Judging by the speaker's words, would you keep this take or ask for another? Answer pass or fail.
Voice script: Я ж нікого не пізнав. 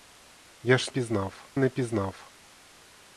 fail